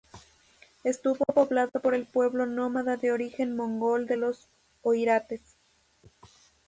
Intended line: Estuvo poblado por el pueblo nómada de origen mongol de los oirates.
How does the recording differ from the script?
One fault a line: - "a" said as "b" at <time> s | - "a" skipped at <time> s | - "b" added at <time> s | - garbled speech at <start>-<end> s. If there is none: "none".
none